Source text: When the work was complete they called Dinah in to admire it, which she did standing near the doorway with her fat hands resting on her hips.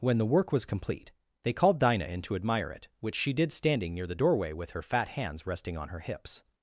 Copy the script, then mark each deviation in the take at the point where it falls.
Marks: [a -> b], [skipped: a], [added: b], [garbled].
When the work was complete they called Dinah in to admire it, which she did standing near the doorway with her fat hands resting on her hips.